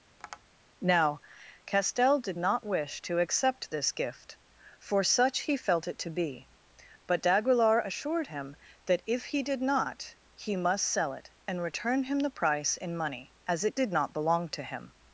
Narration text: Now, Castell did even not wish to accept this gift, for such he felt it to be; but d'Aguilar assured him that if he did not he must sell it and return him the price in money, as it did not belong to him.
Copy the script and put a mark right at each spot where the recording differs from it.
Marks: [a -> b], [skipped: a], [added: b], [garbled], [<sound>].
[tap] Now, Castell did [skipped: even] not wish to accept this gift, for such he felt it to be; but d'Aguilar assured him that if he did not he must sell it and return him the price in money, as it did not belong to him.